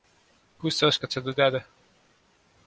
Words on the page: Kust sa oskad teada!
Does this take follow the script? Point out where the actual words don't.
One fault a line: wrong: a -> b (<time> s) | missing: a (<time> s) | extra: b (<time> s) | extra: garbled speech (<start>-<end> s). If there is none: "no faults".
extra: seda (1.1 s)